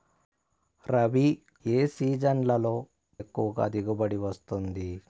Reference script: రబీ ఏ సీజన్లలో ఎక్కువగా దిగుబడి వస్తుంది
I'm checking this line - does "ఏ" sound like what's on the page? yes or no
yes